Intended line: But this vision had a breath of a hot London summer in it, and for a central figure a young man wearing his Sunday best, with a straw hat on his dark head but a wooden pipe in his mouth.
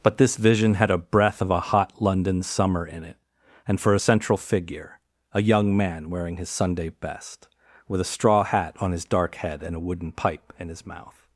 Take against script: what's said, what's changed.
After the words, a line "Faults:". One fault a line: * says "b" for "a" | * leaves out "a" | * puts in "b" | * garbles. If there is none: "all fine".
But this vision had a breath of a hot London summer in it, and for a central figure a young man wearing his Sunday best, with a straw hat on his dark head and a wooden pipe in his mouth.
Faults:
* says "and" for "but"